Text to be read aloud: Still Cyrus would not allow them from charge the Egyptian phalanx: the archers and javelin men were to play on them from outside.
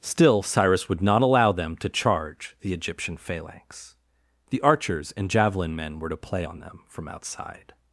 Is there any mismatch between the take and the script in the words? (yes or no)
yes